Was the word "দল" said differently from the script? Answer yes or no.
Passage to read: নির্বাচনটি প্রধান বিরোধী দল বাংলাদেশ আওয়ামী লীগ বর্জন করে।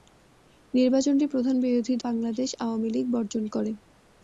yes